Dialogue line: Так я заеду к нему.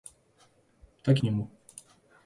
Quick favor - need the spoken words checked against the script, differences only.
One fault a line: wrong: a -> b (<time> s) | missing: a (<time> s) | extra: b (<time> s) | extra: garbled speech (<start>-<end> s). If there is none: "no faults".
missing: я заеду (1.2 s)